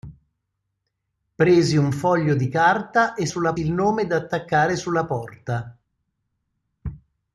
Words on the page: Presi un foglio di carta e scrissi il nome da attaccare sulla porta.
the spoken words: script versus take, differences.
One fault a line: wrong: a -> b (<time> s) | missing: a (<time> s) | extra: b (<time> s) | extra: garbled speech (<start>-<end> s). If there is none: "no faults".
wrong: scrissi -> sulla (3.3 s)